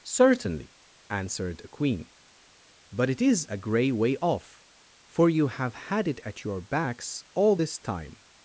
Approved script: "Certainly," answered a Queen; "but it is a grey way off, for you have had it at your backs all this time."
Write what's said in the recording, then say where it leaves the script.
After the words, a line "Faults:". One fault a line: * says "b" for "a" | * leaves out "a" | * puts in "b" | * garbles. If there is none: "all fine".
"Certainly," answered a Queen; "but it is a grey way off, for you have had it at your backs all this time."
Faults:
all fine